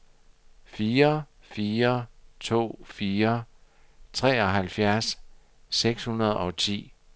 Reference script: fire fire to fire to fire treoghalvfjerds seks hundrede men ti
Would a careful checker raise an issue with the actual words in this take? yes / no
yes